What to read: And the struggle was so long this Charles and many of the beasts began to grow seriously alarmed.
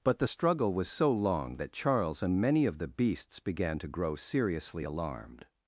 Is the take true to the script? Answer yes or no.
no